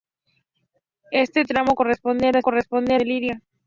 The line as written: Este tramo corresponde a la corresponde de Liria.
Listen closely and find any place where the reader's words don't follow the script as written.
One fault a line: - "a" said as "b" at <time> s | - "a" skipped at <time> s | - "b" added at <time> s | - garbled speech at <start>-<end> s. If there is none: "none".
none